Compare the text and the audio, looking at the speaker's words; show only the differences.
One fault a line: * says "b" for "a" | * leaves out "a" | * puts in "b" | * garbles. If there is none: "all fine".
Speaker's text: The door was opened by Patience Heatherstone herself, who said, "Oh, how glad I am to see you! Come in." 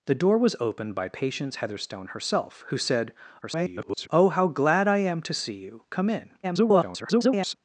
* garbles
* garbles